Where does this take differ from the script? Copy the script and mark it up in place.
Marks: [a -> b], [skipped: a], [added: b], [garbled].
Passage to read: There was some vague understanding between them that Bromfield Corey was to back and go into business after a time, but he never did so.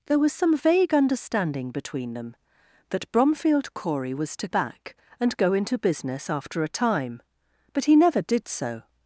There was some vague understanding between them that Bromfield Corey was to back and go into business after a time, but he never did so.